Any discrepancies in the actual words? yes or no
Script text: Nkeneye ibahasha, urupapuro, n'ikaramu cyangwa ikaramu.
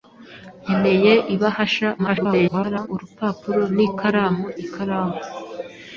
yes